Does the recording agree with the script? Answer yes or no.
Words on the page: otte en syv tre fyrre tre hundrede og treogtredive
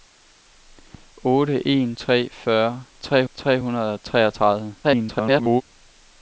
no